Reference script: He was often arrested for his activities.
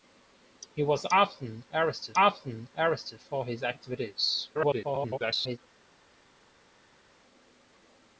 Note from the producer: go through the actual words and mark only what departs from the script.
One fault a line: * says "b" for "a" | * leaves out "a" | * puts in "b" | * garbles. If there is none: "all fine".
* puts in "often arrested"
* garbles